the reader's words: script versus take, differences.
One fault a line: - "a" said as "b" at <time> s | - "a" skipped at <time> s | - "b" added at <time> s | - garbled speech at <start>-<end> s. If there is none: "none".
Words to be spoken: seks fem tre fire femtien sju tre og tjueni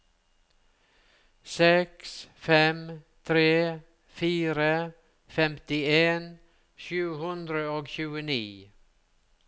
- "tre" said as "hundre" at 7.2 s